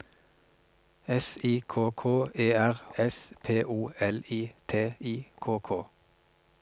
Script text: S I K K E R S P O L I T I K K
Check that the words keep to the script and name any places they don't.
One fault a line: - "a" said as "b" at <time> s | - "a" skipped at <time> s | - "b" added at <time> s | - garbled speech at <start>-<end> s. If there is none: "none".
none